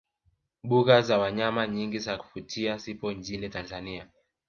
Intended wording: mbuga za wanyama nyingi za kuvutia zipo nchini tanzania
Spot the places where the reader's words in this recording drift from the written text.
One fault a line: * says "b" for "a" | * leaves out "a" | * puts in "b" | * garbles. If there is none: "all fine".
all fine